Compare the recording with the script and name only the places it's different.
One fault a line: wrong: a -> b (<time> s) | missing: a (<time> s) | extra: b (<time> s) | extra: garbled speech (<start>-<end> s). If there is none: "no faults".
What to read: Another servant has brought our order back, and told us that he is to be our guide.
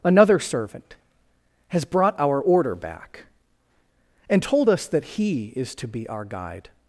no faults